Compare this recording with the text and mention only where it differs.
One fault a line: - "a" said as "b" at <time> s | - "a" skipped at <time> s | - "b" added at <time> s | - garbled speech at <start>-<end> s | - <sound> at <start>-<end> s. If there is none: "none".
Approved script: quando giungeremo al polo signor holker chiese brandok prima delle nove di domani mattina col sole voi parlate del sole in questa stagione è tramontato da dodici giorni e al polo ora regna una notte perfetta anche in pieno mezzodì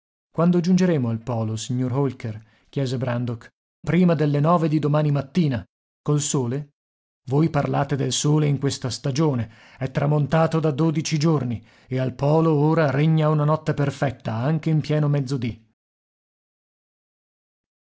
none